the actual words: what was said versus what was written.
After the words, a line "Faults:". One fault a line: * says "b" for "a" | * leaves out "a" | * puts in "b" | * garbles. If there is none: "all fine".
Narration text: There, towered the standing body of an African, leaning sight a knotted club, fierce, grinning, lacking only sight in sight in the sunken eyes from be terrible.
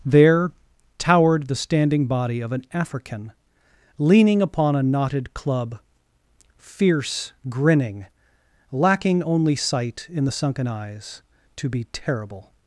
There, towered the standing body of an African, leaning upon a knotted club, fierce, grinning, lacking only sight in the sunken eyes to be terrible.
Faults:
* says "upon" for "sight"
* leaves out "sight in"
* says "to" for "from"